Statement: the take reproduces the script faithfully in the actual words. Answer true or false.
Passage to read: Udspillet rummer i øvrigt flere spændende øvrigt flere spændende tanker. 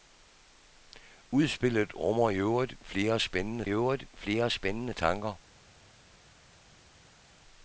true